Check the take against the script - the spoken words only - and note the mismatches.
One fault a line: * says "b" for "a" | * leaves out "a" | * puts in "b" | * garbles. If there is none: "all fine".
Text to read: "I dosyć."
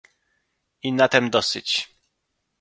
* puts in "na tem"